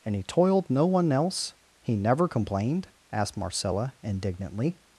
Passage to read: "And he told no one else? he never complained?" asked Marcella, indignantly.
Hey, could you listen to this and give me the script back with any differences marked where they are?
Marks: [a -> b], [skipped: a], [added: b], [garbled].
"And he [told -> toiled] no one else? he never complained?" asked Marcella, indignantly.